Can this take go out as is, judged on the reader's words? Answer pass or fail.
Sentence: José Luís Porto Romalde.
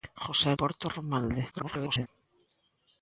fail